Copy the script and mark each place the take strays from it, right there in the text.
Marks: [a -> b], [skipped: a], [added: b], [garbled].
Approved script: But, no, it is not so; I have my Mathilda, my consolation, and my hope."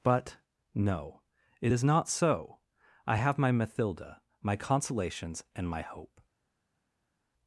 But, no, it is not so; I have my Mathilda, my [consolation, -> consolations] and my hope."